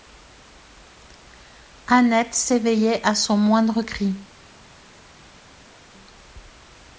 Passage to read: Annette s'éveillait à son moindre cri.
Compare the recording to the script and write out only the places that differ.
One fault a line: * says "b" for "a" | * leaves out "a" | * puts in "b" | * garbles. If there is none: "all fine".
all fine